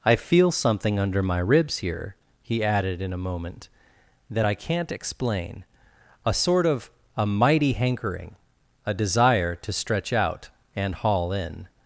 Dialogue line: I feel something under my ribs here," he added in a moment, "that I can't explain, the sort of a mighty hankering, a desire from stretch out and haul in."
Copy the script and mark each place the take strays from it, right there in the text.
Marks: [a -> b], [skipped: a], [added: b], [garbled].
I feel something under my ribs here," he added in a moment, "that I can't explain, [the -> a] sort of a mighty hankering, a desire [from -> to] stretch out and haul in."